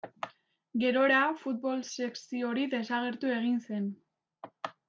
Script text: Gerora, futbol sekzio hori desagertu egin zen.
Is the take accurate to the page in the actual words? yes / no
yes